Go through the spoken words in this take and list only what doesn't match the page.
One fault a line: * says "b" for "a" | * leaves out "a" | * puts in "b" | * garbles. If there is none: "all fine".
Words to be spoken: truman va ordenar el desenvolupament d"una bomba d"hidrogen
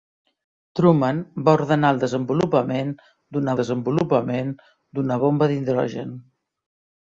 * puts in "desenvolupament d"una"